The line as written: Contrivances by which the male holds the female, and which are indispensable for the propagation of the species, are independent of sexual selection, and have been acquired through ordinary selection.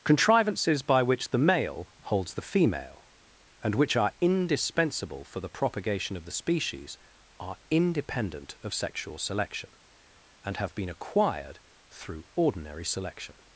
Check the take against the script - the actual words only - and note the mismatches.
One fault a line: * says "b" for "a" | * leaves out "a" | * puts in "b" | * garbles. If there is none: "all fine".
all fine